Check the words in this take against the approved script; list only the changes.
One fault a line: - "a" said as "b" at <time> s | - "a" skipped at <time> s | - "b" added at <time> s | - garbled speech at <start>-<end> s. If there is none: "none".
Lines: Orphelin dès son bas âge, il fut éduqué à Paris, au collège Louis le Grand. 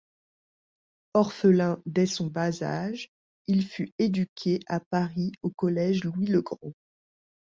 none